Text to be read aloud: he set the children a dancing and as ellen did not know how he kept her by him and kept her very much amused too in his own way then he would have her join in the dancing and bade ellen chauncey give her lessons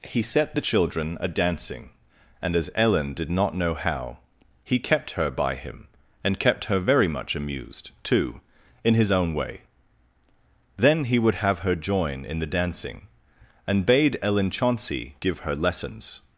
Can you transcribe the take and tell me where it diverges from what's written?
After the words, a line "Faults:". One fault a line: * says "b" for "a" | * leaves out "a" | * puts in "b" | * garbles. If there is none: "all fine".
he set the children a dancing and as ellen did not know how he kept her by him and kept her very much amused too in his own way then he would have her join in the dancing and bade ellen chauncey give her lessons
Faults:
all fine